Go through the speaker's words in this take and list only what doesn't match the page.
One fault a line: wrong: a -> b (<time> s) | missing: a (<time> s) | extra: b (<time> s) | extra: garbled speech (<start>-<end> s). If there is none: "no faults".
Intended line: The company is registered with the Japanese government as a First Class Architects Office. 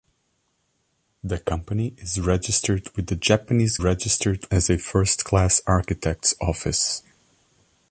wrong: government -> registered (3.8 s)